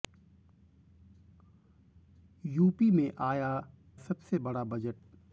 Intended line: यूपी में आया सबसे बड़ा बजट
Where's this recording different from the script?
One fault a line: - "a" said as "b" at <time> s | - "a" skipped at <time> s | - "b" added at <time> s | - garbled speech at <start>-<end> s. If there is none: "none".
none